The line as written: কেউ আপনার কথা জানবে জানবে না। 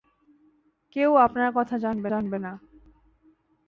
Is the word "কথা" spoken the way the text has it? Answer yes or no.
yes